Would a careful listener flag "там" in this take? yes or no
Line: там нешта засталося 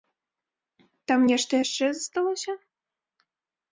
no